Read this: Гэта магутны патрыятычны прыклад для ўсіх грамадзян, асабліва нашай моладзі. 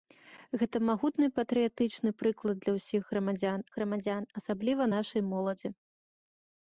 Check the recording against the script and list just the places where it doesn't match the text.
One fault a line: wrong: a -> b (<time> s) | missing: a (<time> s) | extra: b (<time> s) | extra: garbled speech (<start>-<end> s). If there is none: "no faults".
extra: грамадзян (3.8 s)